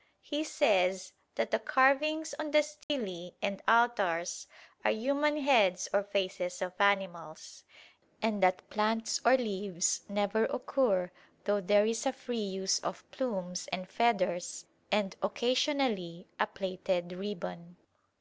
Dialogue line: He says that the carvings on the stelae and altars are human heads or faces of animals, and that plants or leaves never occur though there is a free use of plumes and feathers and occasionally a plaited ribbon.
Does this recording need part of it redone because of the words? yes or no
no